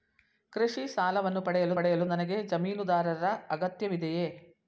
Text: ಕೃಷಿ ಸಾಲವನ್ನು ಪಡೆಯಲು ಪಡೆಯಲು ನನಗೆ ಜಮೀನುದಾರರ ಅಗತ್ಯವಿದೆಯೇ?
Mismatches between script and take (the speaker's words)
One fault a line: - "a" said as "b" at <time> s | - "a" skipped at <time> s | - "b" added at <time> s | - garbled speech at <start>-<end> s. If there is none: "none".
none